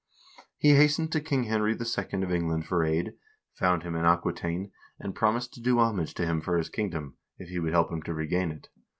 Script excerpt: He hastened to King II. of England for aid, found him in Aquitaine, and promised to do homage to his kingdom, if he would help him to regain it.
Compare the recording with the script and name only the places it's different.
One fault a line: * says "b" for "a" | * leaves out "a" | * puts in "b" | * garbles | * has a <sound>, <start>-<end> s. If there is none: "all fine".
* puts in "Henry"
* puts in "him for"